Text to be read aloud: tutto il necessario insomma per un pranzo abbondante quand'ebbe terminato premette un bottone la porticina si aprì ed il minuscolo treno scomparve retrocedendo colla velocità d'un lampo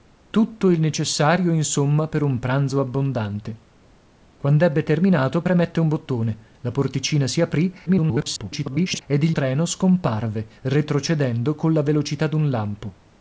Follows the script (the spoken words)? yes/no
no